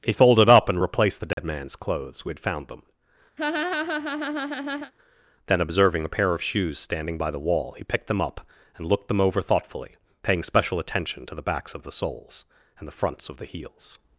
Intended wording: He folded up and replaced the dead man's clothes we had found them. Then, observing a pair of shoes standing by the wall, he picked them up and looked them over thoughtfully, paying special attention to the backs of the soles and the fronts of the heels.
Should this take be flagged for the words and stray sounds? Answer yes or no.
yes